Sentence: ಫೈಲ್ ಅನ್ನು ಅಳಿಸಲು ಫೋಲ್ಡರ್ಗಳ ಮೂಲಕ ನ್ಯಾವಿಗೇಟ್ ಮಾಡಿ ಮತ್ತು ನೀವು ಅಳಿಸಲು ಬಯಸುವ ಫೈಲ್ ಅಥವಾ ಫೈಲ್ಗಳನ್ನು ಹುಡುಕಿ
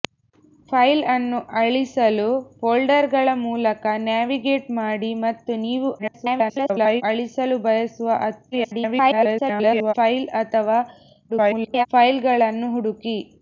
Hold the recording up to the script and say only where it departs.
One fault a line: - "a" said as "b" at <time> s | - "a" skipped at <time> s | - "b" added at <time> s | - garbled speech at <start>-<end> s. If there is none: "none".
- garbled speech at 6.0-7.0 s
- garbled speech at 8.5-9.9 s
- garbled speech at 11.3-11.9 s